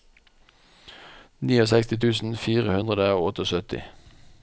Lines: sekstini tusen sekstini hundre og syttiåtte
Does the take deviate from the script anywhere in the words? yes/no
yes